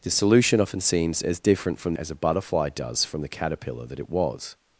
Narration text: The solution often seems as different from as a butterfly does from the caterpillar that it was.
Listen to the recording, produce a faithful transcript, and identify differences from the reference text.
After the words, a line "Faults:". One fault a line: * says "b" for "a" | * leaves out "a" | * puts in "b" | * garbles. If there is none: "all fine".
The solution often seems as different from as a butterfly does from the caterpillar that it was.
Faults:
all fine